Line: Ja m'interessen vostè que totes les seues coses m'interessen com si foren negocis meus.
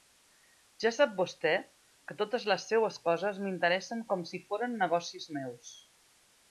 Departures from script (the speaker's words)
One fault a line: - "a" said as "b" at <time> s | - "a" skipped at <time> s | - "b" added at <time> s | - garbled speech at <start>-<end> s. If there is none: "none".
- "m'interessen" said as "sap" at 0.9 s